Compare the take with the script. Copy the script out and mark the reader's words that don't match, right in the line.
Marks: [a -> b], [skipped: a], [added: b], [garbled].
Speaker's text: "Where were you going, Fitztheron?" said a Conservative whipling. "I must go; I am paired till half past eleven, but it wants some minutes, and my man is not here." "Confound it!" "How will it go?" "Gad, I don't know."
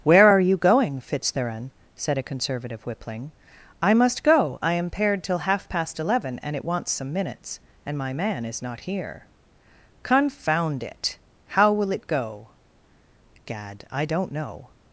"Where [were -> are] you going, Fitztheron?" said a Conservative whipling. "I must go; I am paired till half past eleven, [but -> and] it wants some minutes, and my man is not here." "Confound it!" "How will it go?" "Gad, I don't know."